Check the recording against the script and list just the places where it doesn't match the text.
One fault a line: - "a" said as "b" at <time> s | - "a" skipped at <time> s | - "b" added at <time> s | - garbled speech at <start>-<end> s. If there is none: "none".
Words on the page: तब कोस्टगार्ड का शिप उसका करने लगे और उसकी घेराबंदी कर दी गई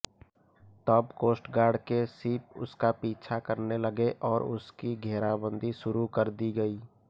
- "का" said as "के" at 1.8 s
- "पीछा" added at 3.0 s
- "शुरू" added at 5.8 s